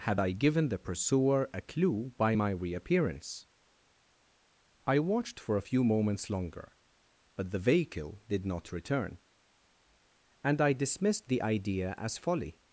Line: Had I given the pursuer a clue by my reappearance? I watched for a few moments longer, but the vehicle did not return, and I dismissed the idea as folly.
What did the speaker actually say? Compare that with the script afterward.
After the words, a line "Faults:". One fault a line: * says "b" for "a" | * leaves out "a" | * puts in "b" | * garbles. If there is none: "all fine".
Had I given the pursuer a clue by my reappearance? I watched for a few moments longer, but the vehicle did not return, and I dismissed the idea as folly.
Faults:
all fine